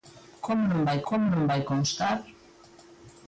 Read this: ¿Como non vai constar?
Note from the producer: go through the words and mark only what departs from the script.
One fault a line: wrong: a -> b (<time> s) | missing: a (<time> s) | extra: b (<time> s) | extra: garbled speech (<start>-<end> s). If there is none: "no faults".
extra: como non vai (1.1 s)